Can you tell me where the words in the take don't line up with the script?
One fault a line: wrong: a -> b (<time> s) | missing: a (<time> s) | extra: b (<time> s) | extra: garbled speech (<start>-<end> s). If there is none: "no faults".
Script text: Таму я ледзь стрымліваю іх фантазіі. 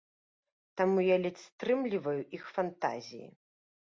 no faults